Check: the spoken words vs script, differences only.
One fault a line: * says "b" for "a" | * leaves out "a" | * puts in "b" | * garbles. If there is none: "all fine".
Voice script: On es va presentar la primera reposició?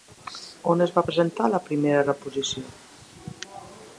all fine